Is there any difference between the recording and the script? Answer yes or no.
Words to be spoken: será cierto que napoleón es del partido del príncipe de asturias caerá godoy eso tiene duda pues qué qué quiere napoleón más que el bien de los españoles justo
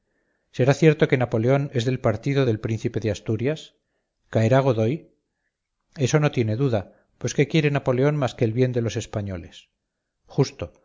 yes